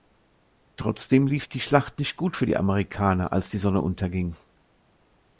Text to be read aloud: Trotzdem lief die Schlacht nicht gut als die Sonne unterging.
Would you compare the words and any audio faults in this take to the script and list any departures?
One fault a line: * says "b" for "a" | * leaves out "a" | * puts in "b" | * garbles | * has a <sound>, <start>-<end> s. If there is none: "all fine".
* puts in "für die Amerikaner"